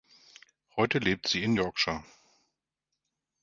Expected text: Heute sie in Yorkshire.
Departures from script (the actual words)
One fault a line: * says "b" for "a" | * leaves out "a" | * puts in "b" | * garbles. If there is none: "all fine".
* puts in "lebt"